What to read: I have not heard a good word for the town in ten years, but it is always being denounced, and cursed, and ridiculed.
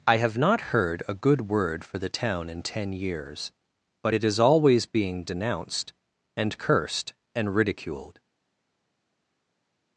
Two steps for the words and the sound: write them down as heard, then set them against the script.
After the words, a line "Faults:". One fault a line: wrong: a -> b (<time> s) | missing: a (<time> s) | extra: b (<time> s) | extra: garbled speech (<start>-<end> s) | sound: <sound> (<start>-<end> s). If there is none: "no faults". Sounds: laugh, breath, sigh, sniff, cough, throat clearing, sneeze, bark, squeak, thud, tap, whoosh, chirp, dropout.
I have not heard a good word for the town in ten years, but it is always being denounced, and cursed, and ridiculed.
Faults:
no faults